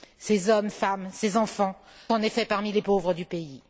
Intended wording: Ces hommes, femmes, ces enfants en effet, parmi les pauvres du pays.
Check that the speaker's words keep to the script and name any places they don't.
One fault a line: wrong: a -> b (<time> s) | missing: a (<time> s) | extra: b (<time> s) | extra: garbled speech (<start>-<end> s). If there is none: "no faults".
no faults